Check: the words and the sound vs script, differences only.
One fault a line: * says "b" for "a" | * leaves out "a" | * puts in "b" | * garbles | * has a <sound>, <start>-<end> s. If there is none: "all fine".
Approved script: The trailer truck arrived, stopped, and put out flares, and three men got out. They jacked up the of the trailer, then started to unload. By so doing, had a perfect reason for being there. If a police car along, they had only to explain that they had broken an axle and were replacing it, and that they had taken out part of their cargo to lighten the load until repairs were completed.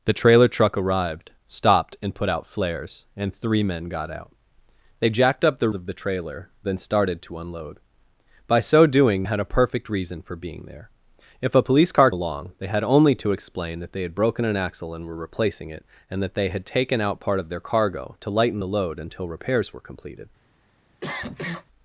* has a cough, 21.0-21.7 s